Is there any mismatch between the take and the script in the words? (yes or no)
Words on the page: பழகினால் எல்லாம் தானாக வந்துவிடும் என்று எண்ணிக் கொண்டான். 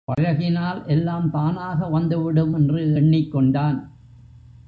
no